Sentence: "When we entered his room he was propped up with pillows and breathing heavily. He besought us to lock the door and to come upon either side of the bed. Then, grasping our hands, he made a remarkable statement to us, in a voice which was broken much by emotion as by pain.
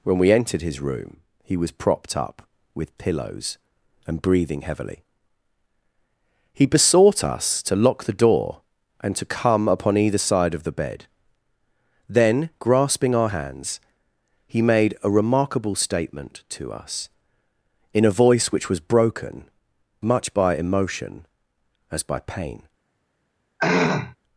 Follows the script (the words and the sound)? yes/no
no